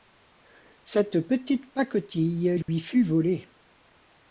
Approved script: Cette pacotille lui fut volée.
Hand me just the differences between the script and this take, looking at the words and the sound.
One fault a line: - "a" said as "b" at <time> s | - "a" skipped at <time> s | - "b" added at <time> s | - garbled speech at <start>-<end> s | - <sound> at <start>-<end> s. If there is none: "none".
- "petite" added at 1.3 s
- dropout at 2.6-2.7 s